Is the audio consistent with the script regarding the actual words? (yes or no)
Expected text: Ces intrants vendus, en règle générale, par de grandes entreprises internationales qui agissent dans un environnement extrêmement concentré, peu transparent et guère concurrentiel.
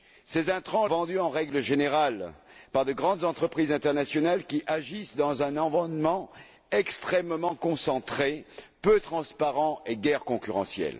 yes